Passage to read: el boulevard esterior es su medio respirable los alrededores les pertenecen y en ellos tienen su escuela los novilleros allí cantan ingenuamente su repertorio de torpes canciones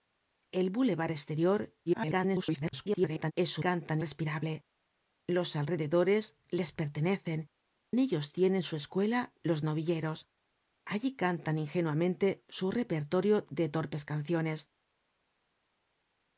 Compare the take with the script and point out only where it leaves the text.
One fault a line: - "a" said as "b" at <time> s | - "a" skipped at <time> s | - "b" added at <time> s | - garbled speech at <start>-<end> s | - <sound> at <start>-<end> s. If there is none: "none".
- garbled speech at 1.9-3.3 s
- "medio" said as "cantan" at 3.6 s
- "y" skipped at 7.5 s